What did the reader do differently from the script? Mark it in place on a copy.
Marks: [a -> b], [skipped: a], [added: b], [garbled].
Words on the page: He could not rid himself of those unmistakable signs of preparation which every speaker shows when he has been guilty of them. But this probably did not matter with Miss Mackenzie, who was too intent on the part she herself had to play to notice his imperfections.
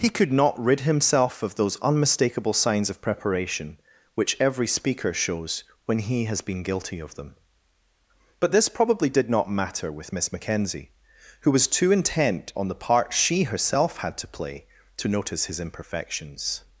He could not rid himself of those unmistakable signs of preparation which every speaker shows when he has been guilty of them. But this probably did not matter with Miss Mackenzie, who was too intent on the part she herself had to play to notice his imperfections.